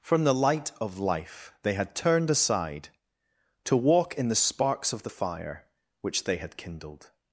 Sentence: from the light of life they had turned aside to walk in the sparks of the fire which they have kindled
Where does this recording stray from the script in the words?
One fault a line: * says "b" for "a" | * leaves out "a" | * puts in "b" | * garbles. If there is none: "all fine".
* says "had" for "have"